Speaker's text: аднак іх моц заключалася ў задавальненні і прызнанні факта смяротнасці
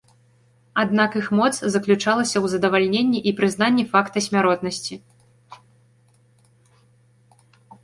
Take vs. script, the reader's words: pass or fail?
pass